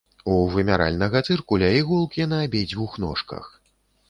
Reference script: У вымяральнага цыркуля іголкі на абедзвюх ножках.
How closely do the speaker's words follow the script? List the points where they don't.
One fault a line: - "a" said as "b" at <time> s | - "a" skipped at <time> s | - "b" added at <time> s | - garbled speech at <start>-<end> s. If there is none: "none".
none